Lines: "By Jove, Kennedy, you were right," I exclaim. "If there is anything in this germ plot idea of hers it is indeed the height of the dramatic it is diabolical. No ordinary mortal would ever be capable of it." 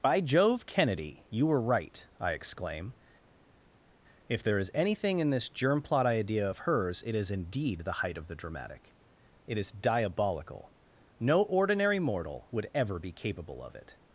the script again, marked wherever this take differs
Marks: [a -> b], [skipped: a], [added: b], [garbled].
"By Jove, Kennedy, you were right," I exclaim. "If there is anything in this germ plot idea of hers it is indeed the height of the dramatic it is diabolical. No ordinary mortal would ever be capable of it."